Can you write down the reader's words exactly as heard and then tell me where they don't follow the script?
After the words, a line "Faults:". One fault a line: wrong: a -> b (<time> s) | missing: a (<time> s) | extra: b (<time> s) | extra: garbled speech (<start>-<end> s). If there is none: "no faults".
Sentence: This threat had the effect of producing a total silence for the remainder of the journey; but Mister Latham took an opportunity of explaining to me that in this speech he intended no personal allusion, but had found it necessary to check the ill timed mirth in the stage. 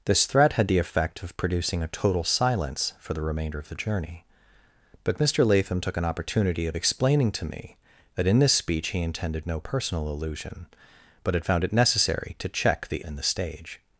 This threat had the effect of producing a total silence for the remainder of the journey; but Mister Latham took an opportunity of explaining to me that in this speech he intended no personal allusion, but had found it necessary to check the in the stage.
Faults:
missing: ill timed mirth (13.0 s)